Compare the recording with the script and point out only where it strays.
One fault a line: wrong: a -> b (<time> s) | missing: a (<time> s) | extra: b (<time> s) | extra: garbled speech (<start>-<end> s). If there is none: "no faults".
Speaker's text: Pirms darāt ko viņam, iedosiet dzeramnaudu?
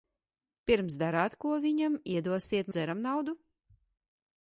no faults